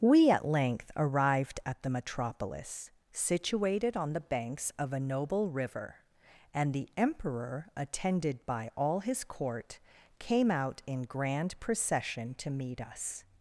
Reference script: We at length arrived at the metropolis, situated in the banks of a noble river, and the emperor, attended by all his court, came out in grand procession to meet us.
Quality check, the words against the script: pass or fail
fail